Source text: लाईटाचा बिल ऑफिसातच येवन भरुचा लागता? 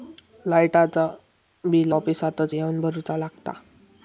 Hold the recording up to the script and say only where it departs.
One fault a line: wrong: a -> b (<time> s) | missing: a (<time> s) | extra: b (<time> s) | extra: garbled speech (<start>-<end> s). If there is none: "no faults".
no faults